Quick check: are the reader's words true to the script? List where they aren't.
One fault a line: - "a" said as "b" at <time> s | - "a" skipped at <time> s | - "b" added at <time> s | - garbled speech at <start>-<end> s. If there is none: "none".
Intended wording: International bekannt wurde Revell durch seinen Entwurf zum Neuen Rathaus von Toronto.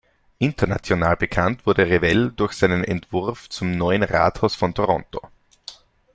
none